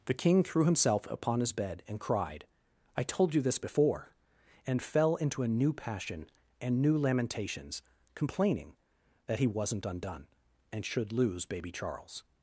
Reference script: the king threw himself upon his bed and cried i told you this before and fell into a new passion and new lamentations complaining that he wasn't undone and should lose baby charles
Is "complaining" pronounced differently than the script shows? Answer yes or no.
no